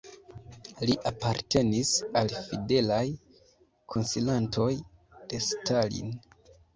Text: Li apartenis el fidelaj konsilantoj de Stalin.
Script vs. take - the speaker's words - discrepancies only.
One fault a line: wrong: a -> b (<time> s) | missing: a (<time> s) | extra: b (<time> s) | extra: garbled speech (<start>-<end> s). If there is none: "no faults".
wrong: el -> al (2.2 s)